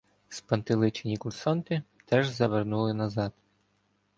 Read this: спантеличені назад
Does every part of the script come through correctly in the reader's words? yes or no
no